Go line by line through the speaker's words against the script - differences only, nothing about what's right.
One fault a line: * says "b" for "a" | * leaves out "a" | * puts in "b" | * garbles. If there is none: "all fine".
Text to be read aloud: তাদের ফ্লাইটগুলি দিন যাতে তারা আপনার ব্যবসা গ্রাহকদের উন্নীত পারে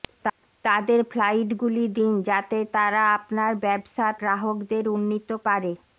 all fine